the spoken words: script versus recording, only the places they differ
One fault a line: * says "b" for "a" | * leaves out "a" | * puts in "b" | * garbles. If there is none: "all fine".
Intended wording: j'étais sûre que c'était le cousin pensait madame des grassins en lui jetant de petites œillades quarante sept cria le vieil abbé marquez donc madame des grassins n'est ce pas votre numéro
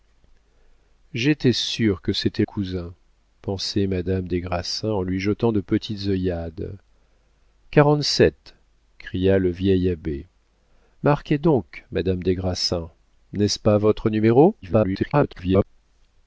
* leaves out "le"
* garbles